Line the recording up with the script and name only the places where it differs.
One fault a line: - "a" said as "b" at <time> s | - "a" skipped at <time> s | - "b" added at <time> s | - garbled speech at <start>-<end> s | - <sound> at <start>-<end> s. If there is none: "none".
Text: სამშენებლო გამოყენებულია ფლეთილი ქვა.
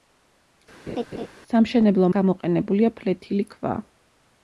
- laugh at 0.9-1.3 s